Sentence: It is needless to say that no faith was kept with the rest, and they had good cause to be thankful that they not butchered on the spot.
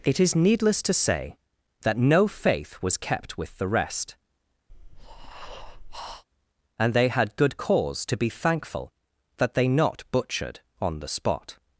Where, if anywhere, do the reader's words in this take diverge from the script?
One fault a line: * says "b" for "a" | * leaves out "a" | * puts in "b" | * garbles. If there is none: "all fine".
all fine